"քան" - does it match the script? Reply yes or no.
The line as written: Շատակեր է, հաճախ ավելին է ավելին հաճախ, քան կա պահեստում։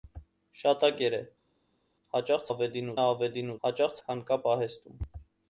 yes